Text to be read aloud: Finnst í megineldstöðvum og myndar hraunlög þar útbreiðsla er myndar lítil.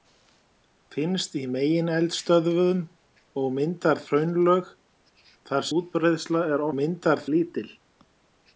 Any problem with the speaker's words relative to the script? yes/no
no